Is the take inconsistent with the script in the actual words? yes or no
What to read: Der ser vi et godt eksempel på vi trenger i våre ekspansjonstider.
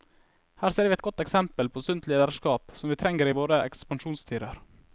yes